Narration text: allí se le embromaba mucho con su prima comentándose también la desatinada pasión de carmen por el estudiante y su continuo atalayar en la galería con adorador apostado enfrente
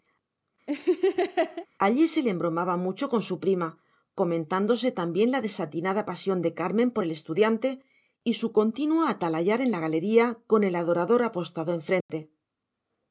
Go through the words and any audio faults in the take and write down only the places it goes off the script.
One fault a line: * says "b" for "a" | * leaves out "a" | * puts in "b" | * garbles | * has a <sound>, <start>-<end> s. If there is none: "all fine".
* has a laugh, 0.7-1.7 s
* puts in "el"
* has a dropout, 12.0-12.1 s